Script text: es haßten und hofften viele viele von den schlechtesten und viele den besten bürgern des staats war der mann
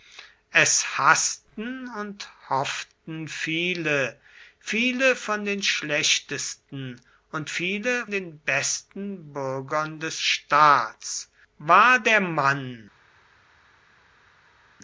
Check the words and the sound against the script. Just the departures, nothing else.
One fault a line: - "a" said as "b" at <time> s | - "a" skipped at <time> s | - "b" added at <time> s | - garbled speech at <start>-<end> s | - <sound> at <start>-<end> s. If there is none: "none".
none